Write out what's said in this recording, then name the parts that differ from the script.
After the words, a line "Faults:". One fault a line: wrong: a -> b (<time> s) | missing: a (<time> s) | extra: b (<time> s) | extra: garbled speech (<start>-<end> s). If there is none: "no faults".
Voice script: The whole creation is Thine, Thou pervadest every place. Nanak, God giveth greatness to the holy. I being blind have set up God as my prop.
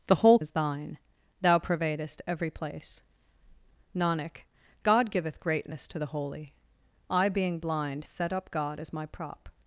The whole is Thine, Thou pervadest every place. Nanak, God giveth greatness to the holy. I being blind set up God as my prop.
Faults:
missing: creation (0.4 s)
missing: have (8.1 s)